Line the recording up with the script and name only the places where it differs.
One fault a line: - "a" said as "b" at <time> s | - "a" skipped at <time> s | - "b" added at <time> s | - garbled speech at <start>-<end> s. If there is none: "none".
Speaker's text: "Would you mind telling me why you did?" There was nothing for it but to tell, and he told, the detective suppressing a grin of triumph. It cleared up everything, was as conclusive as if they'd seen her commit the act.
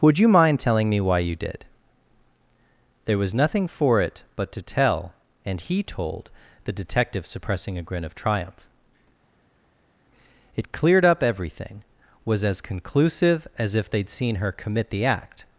none